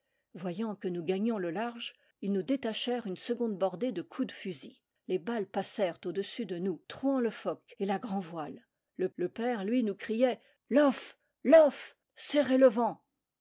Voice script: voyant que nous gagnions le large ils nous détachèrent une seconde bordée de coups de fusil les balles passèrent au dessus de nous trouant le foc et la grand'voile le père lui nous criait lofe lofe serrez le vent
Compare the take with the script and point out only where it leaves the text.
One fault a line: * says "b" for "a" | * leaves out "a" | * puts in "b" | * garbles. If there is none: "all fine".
* puts in "le"